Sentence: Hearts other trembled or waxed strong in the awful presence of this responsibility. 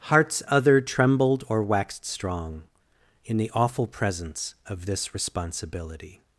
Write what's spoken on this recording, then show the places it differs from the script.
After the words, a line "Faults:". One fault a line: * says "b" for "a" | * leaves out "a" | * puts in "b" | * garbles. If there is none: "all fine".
Hearts other trembled or waxed strong in the awful presence of this responsibility.
Faults:
all fine